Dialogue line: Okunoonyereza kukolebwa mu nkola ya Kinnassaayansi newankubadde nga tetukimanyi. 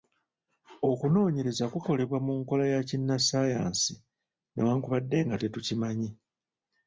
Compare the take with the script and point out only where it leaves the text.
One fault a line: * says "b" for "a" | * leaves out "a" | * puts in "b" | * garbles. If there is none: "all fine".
all fine